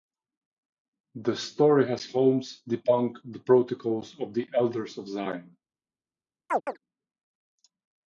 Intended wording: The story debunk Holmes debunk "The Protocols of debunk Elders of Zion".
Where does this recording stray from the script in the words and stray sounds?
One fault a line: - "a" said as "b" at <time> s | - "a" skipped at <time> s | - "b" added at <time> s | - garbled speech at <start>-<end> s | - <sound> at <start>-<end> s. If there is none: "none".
- "debunk" said as "has" at 1.9 s
- "debunk" said as "the" at 4.3 s
- chirp at 6.5-6.8 s